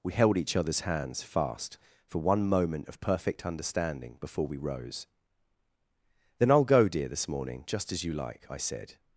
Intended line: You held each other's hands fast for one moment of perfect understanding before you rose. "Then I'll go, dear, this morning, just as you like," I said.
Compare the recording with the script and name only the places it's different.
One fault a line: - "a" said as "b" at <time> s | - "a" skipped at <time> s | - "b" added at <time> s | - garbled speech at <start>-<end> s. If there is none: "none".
- "You" said as "We" at 0.0 s
- "you" said as "we" at 4.5 s